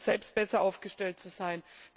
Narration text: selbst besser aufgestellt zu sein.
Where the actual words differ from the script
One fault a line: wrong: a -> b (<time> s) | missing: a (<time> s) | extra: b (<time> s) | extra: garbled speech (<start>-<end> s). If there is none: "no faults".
no faults